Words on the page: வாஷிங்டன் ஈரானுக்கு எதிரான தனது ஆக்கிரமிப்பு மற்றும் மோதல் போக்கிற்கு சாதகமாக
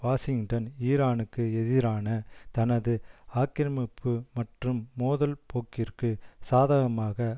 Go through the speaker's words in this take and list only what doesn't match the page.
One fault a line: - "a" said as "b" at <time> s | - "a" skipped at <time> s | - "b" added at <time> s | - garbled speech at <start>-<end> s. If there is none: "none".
none